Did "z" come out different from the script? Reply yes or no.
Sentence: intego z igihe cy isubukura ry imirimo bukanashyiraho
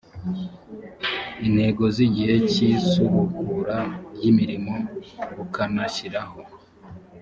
no